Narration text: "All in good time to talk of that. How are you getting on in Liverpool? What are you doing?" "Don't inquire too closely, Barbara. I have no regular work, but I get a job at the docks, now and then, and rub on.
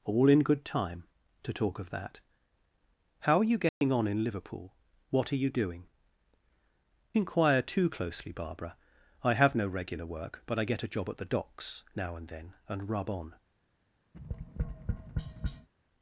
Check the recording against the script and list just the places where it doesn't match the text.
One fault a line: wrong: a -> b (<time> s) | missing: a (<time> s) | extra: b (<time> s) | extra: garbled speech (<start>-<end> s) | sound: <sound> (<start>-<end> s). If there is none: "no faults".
sound: dropout (3.7-3.8 s)
missing: Don't (5.8 s)
sound: tap (14.1-15.7 s)